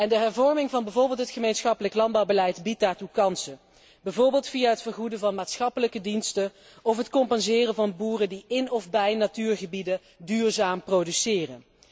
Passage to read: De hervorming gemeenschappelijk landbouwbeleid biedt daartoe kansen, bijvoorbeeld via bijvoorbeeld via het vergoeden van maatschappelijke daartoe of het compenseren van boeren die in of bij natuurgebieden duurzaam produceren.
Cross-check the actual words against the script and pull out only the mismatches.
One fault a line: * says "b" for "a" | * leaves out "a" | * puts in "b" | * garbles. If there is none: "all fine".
* puts in "van bijvoorbeeld het"
* leaves out "bijvoorbeeld via"
* says "diensten" for "daartoe"